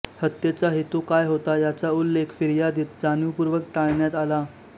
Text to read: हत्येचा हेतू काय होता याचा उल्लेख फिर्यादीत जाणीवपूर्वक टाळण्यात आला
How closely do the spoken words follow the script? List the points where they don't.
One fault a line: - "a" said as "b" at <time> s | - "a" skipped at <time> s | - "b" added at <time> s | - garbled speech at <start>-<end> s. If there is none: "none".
none